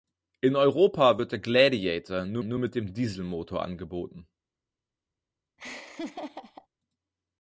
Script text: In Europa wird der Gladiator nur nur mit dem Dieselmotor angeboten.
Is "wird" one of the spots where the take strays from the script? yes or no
no